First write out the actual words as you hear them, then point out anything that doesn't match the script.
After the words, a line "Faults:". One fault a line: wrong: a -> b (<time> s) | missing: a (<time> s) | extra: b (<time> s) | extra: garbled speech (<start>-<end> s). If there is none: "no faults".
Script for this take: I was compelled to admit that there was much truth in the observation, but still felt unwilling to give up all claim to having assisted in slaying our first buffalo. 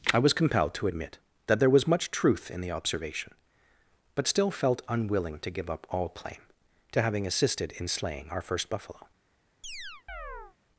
I was compelled to admit that there was much truth in the observation, but still felt unwilling to give up all claim to having assisted in slaying our first buffalo.
Faults:
no faults